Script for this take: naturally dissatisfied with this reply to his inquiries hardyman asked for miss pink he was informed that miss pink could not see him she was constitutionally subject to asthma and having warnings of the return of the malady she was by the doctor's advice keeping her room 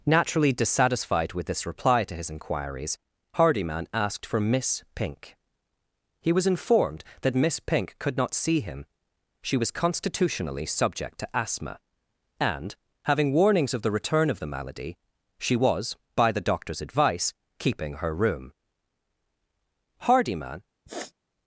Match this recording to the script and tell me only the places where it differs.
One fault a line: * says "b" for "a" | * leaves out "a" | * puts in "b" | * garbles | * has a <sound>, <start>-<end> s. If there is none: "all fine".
* puts in "hardyman"
* has a sniff, 20.9-21.1 s